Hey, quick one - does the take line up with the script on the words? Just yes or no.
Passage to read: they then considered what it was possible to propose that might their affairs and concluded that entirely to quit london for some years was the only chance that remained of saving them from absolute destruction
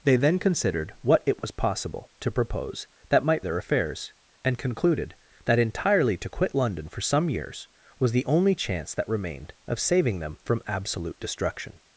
yes